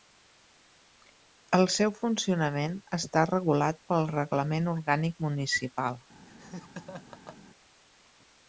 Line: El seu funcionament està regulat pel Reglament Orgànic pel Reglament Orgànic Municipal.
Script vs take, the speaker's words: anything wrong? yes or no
yes